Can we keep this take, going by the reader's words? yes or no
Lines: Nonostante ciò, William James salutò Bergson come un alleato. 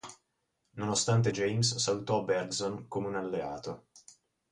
no